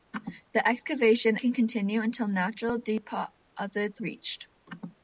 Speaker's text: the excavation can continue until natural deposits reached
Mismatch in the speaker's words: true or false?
false